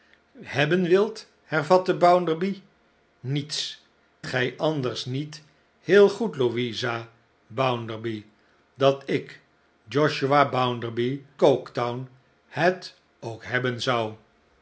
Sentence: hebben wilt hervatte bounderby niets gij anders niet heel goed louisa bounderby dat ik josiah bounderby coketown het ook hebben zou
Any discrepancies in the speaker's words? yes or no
no